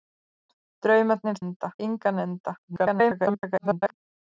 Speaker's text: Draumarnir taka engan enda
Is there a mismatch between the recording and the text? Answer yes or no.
yes